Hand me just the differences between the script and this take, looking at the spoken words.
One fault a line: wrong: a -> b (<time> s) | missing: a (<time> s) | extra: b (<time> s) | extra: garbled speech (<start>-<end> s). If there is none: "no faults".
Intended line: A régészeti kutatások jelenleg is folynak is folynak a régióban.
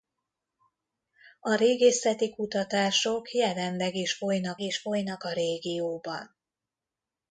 no faults